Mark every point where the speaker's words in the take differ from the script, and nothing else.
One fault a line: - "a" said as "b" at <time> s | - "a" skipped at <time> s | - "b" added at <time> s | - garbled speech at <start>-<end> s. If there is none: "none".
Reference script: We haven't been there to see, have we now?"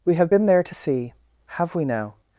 - "haven't" said as "have" at 0.1 s